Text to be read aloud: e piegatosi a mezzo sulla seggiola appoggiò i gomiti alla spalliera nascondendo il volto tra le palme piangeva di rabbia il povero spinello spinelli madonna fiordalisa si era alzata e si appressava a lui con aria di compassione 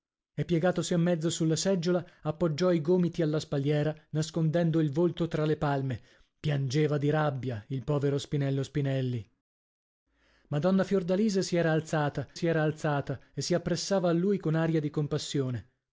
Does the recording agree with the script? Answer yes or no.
no